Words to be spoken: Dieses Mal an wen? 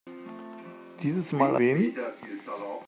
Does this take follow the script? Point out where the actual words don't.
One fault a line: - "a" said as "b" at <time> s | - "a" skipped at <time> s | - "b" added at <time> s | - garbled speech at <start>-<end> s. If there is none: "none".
- "an" skipped at 1.6 s